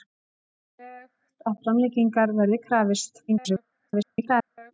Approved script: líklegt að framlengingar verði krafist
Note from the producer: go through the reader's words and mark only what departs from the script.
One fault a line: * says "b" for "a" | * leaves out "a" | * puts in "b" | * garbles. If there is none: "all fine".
* garbles